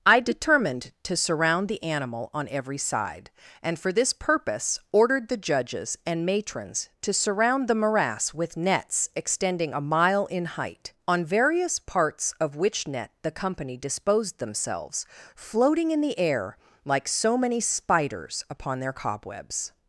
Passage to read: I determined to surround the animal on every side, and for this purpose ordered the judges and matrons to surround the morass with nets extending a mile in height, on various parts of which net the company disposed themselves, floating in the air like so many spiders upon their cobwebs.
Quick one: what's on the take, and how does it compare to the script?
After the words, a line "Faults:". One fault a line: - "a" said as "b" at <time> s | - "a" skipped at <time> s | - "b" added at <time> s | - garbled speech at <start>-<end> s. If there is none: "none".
I determined to surround the animal on every side, and for this purpose ordered the judges and matrons to surround the morass with nets extending a mile in height, on various parts of which net the company disposed themselves, floating in the air like so many spiders upon their cobwebs.
Faults:
none